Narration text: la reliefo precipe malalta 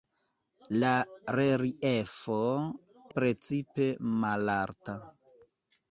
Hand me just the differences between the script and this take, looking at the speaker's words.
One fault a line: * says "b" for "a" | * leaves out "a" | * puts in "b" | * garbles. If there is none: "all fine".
all fine